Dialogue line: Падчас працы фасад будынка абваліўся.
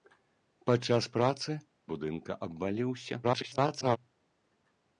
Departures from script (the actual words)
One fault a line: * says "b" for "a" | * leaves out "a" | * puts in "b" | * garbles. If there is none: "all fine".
* leaves out "фасад"
* garbles